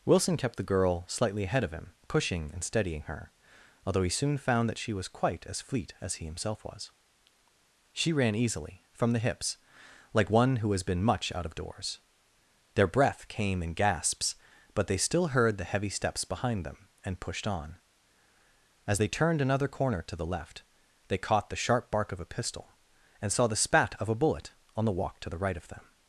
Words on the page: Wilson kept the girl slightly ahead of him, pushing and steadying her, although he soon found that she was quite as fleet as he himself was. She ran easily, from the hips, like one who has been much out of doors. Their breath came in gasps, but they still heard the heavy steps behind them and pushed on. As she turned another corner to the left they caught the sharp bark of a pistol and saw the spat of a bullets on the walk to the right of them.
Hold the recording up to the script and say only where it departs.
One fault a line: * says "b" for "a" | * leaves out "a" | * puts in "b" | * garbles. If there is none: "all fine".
* says "they" for "she"
* says "bullet" for "bullets"